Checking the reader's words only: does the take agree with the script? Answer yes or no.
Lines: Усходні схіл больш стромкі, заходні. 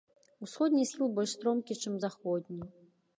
no